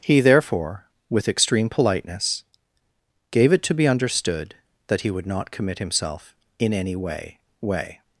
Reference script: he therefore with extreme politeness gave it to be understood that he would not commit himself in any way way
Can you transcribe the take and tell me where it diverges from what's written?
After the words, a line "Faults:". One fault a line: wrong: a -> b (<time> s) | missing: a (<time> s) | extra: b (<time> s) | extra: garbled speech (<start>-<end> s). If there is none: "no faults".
he therefore with extreme politeness gave it to be understood that he would not commit himself in any way way
Faults:
no faults